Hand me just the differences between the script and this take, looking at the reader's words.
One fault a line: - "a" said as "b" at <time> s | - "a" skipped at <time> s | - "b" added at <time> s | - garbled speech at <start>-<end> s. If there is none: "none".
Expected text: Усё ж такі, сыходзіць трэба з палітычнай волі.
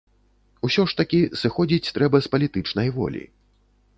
none